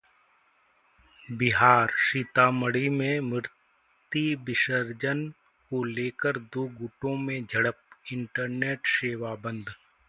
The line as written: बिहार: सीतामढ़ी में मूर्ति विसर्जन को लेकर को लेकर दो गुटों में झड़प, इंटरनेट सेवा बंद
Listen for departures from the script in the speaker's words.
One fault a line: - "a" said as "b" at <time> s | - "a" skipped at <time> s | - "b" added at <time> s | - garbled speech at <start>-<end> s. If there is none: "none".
- "को लेकर" skipped at 6.4 s